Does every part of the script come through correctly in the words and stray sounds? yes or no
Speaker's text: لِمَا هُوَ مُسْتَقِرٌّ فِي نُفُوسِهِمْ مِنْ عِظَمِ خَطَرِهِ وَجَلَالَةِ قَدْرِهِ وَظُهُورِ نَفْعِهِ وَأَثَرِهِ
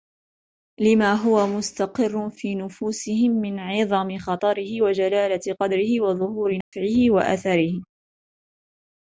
no